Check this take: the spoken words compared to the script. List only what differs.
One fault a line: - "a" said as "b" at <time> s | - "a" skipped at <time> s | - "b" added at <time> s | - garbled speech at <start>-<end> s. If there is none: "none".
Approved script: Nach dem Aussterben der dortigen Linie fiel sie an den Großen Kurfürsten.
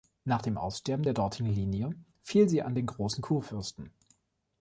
none